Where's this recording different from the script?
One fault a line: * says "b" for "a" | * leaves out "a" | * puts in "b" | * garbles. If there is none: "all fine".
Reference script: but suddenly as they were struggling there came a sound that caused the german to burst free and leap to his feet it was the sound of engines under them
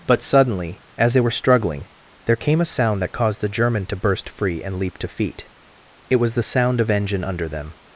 * leaves out "his"
* says "engine" for "engines"